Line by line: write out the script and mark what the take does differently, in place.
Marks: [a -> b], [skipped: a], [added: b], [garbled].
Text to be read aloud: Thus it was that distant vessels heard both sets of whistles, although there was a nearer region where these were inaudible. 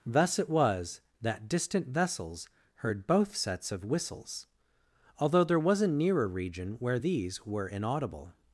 Thus it was that distant vessels heard both sets of whistles, although there was a nearer region where these were inaudible.